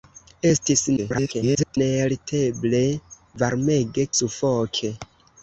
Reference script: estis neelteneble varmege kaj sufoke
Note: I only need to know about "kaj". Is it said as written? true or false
false